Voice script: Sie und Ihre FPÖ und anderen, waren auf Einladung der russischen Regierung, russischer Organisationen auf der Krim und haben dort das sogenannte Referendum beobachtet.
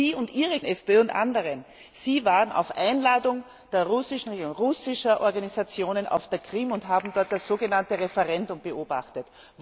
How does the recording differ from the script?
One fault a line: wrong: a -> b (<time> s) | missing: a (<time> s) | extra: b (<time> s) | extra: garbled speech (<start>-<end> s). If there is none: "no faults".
no faults